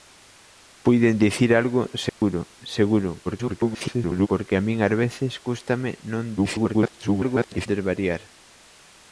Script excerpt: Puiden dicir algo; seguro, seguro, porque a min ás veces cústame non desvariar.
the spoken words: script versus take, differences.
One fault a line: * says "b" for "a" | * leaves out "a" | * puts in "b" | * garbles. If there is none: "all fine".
* garbles
* garbles